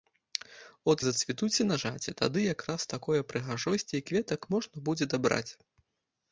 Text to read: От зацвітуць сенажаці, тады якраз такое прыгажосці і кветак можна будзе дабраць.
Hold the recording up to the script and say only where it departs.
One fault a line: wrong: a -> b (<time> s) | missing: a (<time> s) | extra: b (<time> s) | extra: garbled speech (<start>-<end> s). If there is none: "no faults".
no faults